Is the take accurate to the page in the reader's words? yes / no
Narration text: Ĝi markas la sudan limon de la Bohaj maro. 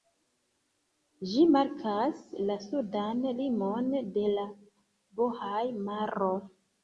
yes